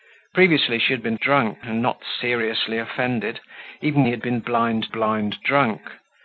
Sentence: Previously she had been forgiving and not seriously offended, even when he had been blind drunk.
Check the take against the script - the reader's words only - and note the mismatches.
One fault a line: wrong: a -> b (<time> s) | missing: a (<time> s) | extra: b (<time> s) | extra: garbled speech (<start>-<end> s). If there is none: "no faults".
wrong: forgiving -> drunk (1.2 s)
missing: when (4.1 s)
extra: blind (4.9 s)